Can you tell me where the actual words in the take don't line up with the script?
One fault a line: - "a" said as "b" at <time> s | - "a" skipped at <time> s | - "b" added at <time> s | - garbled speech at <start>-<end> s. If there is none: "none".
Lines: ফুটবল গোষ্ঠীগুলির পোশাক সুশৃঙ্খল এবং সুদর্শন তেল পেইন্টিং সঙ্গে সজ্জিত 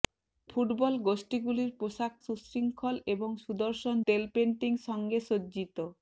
none